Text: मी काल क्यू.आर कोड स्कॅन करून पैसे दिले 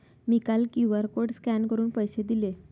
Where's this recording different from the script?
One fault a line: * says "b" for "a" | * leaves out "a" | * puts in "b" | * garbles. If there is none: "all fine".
all fine